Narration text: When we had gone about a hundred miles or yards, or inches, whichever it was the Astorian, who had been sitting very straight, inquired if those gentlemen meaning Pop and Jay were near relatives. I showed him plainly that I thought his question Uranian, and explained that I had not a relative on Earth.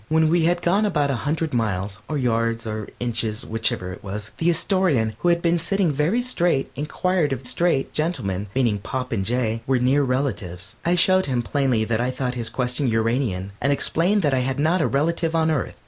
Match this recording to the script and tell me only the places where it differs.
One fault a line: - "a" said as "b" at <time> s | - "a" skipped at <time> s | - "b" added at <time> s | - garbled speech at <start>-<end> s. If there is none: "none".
- "those" said as "straight" at 7.4 s